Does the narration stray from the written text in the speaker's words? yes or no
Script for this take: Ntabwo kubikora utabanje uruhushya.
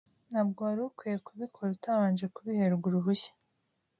yes